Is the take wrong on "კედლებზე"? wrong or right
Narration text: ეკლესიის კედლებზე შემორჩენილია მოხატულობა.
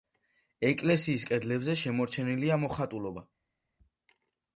right